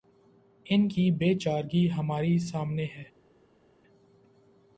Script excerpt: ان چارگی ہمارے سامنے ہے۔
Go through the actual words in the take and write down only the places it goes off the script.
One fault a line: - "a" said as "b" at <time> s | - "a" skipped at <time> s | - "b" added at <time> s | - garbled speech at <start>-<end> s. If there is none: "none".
- "کی بے" added at 0.9 s